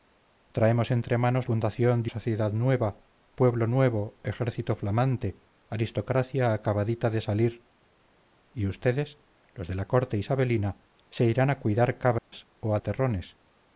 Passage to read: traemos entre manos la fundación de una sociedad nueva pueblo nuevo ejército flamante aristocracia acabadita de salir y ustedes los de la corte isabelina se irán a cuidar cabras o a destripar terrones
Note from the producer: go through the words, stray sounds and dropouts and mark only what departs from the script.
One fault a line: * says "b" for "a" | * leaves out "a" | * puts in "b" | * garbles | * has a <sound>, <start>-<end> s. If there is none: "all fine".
* leaves out "la"
* leaves out "una"
* has a dropout, 12.2-12.3 s
* leaves out "destripar"